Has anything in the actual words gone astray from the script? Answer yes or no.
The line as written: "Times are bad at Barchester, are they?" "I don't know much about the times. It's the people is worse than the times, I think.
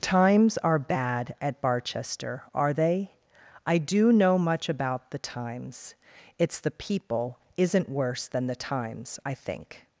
yes